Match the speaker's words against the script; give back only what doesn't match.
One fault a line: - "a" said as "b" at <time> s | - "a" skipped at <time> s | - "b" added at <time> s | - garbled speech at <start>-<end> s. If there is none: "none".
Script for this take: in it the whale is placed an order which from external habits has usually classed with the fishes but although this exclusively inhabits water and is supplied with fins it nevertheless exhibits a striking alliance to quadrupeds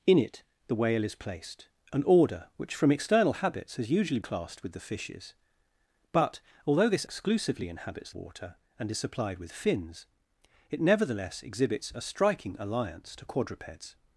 none